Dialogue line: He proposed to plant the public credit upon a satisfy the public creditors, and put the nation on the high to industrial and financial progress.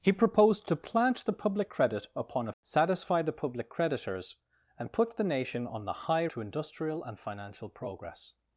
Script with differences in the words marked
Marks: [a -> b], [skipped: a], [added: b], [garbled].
He proposed to plant the public credit upon a satisfy the public creditors, and put the nation on the high to industrial and financial progress.